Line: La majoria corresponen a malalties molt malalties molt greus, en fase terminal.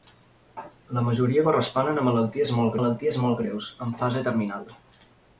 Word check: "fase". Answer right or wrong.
right